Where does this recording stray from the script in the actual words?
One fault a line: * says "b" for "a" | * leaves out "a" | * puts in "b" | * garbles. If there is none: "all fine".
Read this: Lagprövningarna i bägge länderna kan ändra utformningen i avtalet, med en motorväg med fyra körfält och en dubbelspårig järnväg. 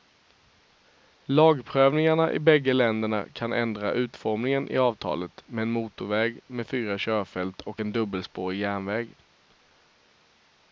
all fine